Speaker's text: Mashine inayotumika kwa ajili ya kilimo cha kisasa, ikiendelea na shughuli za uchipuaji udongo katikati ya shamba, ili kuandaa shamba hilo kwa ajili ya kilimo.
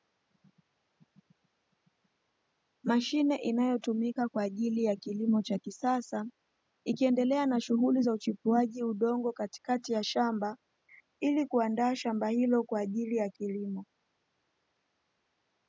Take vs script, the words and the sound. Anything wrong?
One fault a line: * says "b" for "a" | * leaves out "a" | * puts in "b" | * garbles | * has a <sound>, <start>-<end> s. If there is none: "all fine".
all fine